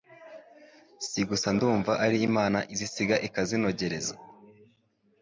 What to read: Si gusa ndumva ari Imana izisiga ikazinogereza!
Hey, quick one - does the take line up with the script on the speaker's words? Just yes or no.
yes